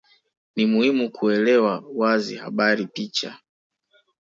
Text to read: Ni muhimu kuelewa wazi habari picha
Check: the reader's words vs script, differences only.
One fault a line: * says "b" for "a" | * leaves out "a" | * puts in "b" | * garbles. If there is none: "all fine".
all fine